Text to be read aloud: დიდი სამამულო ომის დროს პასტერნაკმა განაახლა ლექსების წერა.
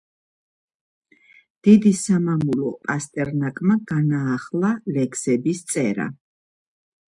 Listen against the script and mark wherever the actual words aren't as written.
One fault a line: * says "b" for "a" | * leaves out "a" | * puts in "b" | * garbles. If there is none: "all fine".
* leaves out "ომის დროს"